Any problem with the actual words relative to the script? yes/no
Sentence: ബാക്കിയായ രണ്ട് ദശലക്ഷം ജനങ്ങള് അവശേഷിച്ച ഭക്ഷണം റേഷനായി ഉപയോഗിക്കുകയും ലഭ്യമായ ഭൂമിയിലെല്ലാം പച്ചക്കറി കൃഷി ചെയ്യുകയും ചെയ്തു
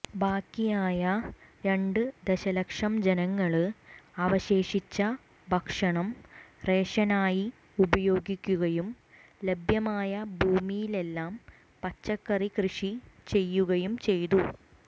no